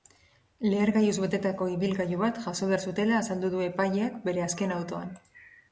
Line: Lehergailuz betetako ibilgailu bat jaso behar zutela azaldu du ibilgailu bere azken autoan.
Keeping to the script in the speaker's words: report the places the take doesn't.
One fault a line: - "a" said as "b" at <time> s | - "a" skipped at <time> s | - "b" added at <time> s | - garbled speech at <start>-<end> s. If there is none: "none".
- "ibilgailu" said as "epaileak" at 3.7 s